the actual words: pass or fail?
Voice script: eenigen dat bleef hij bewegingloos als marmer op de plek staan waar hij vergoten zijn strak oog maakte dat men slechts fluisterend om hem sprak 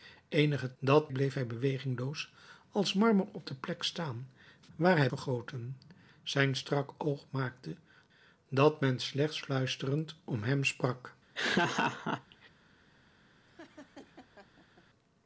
pass